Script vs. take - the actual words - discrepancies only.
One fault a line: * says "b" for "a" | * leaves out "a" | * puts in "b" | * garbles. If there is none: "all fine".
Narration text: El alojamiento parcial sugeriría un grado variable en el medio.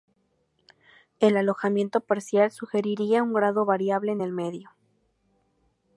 all fine